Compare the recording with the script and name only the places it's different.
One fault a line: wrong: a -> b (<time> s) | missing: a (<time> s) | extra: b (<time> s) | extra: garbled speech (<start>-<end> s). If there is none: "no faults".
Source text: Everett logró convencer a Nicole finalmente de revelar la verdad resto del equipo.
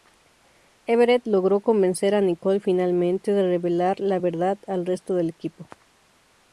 extra: al (4.7 s)